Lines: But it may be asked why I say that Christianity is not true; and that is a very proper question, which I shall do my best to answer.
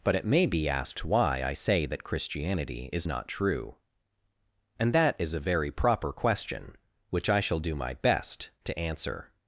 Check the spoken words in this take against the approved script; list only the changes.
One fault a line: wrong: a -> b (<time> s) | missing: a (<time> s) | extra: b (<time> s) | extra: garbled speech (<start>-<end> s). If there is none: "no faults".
no faults